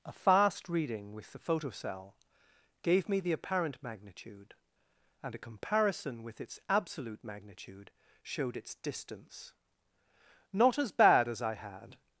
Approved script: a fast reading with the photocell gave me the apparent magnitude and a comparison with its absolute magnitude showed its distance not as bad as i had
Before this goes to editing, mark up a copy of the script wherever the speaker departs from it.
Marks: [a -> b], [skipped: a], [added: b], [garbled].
a fast reading with the photocell gave me the apparent magnitude and a comparison with its absolute magnitude showed its distance not as bad as i had